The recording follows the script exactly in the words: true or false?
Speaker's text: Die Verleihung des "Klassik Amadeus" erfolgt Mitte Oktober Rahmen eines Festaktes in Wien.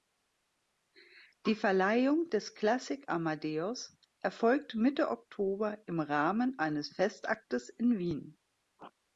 false